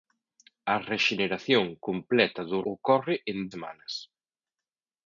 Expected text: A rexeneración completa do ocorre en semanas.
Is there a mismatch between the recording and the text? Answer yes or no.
no